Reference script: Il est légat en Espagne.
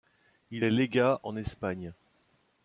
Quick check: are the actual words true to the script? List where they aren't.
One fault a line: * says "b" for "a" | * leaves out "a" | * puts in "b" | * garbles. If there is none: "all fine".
all fine